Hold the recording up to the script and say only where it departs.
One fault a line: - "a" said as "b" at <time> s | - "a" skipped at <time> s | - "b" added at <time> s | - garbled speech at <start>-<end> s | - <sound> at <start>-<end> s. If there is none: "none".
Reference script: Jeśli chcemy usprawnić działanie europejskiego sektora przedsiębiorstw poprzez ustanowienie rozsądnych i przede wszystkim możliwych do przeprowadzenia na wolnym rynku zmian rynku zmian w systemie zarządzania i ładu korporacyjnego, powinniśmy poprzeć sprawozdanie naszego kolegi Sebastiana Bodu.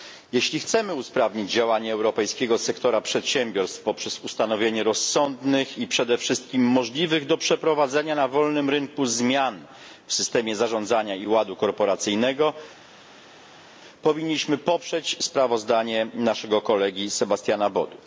- "rynku zmian" skipped at 9.7 s